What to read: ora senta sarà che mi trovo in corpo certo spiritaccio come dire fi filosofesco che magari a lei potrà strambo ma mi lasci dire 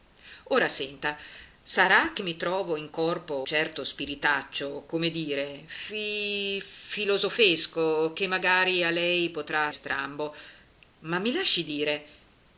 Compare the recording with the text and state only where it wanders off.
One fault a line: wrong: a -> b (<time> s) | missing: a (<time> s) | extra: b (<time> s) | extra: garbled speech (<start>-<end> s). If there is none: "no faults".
no faults